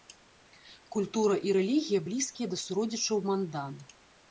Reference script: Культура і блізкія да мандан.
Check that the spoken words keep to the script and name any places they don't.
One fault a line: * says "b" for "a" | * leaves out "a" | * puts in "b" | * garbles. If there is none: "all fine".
* puts in "рэлігія"
* puts in "суродзічаў"